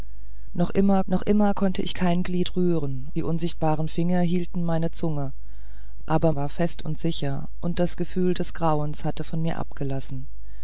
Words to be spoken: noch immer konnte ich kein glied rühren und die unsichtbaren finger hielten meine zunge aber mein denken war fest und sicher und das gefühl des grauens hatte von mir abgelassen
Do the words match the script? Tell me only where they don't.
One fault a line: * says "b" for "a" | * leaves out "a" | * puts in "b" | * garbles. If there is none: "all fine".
* puts in "noch immer"
* leaves out "und"
* leaves out "mein denken"